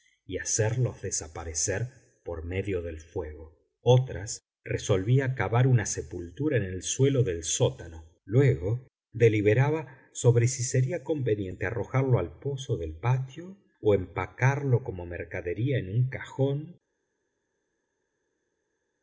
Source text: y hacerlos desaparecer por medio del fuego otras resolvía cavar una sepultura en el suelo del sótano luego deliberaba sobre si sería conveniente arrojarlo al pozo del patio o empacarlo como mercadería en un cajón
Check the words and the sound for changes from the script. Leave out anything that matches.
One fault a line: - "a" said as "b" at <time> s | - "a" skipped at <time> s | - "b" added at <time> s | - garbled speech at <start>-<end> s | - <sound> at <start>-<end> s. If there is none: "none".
none